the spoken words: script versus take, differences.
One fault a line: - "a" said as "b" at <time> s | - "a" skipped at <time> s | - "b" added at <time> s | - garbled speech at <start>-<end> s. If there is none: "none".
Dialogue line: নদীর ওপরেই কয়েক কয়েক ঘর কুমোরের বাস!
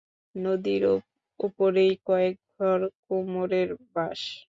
- "কয়েক" skipped at 2.4 s